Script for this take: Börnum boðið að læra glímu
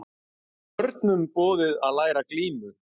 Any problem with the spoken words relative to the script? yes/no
no